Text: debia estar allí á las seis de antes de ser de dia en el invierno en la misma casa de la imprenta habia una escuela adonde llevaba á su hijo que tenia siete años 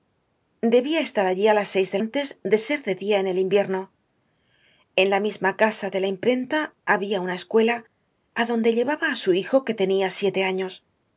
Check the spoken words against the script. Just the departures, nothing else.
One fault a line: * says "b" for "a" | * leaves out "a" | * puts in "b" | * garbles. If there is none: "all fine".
all fine